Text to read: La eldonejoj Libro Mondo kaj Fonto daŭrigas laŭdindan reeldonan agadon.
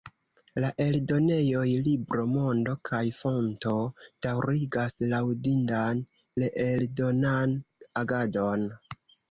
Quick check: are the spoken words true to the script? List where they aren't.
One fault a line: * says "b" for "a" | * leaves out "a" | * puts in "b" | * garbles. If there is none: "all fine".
all fine